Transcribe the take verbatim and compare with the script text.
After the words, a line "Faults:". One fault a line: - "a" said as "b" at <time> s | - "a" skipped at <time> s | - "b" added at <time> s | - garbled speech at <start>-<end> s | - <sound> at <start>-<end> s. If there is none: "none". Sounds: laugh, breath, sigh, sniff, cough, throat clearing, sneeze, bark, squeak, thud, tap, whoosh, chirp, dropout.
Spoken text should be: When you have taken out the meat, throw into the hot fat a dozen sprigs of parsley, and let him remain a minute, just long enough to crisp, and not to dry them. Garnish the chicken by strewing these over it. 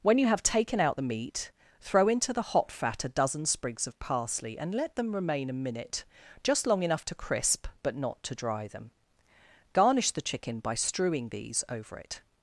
When you have taken out the meat, throw into the hot fat a dozen sprigs of parsley, and let them remain a minute, just long enough to crisp, but not to dry them. Garnish the chicken by strewing these over it.
Faults:
- "him" said as "them" at 4.9 s
- "and" said as "but" at 7.8 s